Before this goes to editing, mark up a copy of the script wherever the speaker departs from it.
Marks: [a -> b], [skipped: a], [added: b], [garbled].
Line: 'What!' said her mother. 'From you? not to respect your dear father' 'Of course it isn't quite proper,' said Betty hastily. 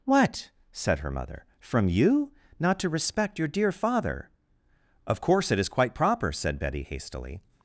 'What!' said her mother. 'From you? not to respect your dear father' 'Of course it [isn't -> is] quite proper,' said Betty hastily.